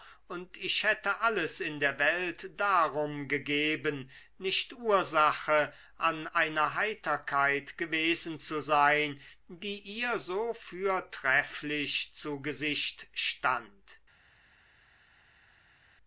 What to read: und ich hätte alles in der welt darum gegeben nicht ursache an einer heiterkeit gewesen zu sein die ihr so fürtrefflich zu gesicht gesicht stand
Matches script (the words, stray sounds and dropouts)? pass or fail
fail